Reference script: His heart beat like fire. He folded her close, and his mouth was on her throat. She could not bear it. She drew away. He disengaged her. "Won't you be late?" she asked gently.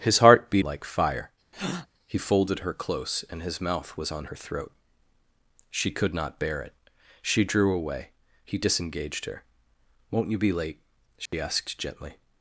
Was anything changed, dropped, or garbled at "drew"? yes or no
no